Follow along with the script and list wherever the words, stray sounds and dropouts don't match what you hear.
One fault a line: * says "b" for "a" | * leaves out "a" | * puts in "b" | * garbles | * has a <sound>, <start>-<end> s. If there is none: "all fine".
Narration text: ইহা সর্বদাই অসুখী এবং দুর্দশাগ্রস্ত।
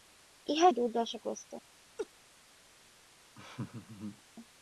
* leaves out "সর্বদাই অসুখী এবং"
* has a laugh, 2.0-2.1 s
* has a laugh, 3.3-4.2 s